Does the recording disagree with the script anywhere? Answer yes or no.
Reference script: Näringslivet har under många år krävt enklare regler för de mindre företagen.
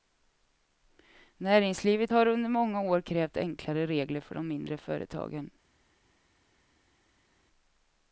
no